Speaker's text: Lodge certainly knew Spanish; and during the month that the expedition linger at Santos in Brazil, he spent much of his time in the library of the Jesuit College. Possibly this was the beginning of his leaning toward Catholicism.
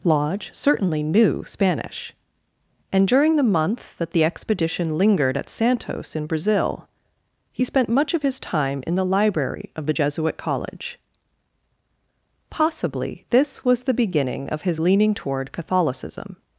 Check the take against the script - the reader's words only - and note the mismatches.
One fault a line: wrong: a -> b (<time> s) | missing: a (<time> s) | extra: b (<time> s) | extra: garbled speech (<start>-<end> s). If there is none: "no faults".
wrong: linger -> lingered (5.0 s)